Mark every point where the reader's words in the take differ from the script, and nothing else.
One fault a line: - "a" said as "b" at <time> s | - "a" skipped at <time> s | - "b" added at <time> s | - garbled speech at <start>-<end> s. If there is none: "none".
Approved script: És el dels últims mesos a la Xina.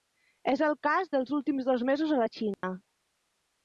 - "cas" added at 0.9 s
- "dos" added at 1.7 s